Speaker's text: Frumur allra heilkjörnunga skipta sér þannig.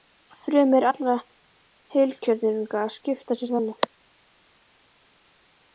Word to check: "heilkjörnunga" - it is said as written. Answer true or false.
true